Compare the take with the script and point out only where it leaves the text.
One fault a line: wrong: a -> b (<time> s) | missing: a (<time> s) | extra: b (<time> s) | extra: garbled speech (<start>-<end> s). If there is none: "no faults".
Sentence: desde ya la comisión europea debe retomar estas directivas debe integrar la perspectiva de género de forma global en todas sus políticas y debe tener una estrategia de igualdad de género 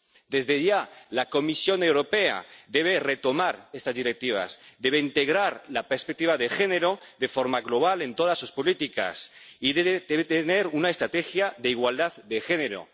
no faults